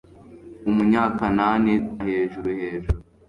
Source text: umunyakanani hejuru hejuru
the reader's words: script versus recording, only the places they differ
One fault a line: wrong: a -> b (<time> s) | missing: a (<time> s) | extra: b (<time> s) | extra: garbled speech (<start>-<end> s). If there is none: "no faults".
no faults